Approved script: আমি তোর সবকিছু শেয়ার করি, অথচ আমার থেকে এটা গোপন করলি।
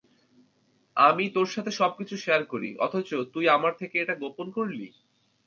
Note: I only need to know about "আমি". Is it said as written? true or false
true